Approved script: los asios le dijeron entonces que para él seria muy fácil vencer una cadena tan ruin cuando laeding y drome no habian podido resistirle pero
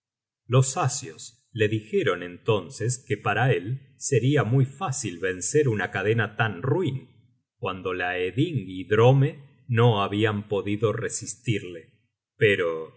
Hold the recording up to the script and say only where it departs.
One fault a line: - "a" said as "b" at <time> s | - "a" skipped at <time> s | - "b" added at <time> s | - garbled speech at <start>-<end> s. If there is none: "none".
none